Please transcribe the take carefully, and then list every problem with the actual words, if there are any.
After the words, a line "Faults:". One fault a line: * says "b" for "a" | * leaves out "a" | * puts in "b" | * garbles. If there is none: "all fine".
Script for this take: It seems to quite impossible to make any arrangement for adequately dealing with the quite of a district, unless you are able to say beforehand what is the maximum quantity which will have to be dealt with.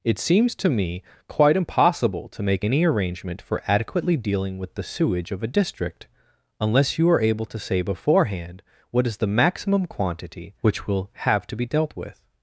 It seems to me quite impossible to make any arrangement for adequately dealing with the sewage of a district, unless you are able to say beforehand what is the maximum quantity which will have to be dealt with.
Faults:
* puts in "me"
* says "sewage" for "quite"